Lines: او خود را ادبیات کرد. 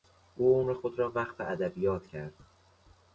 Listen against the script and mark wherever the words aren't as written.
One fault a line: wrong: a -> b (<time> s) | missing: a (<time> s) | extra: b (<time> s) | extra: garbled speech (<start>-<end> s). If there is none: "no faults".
extra: عمر (0.6 s)
extra: وقف (1.1 s)